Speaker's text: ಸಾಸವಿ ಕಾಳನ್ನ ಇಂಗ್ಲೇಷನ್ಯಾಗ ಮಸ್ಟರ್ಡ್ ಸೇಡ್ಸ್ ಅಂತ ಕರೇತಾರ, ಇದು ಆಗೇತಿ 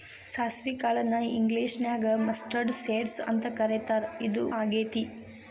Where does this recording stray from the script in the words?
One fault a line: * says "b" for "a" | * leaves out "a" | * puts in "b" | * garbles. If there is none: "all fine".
all fine